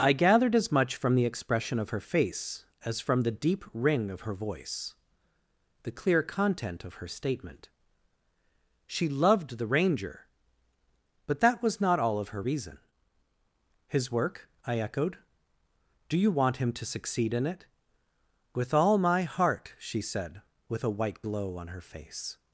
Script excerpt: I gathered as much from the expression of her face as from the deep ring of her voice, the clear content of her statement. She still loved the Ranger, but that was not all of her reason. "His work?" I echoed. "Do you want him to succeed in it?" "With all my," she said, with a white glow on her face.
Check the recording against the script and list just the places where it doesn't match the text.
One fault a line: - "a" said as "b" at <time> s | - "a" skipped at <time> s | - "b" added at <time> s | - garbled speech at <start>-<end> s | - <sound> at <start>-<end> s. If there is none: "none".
- "still" skipped at 9.1 s
- "heart" added at 19.2 s